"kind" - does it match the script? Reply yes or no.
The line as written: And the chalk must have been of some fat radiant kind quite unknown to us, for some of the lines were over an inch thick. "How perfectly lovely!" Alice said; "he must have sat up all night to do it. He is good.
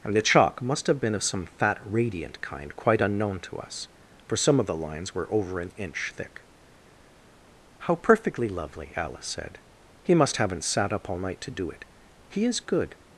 yes